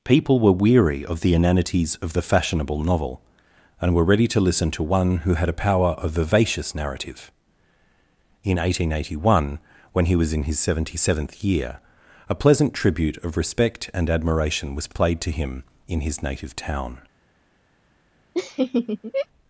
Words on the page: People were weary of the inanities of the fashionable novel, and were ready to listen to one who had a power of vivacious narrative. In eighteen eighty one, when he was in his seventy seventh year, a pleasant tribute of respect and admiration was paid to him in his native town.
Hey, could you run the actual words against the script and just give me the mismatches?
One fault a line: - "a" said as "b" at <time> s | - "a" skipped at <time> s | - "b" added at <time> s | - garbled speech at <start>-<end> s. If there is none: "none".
- "paid" said as "played" at 14.9 s